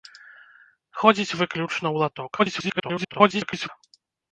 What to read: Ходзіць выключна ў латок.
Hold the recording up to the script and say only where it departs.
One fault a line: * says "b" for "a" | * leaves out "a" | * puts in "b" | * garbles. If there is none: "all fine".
* garbles